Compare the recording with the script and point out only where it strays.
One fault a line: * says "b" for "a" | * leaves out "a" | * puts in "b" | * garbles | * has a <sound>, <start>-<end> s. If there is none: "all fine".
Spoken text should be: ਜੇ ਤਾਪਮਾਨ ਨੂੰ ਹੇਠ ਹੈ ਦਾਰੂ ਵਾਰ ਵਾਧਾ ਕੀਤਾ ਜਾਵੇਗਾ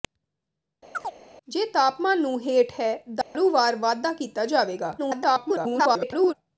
* has a chirp, 0.9-1.1 s
* has a dropout, 3.2-3.4 s
* garbles